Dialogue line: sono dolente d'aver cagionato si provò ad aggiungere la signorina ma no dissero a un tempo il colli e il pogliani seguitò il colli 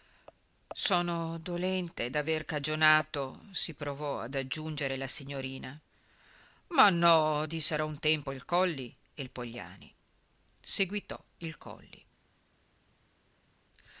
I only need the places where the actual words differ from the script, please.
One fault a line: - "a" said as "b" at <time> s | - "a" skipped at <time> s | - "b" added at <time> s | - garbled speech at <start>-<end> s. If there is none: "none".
none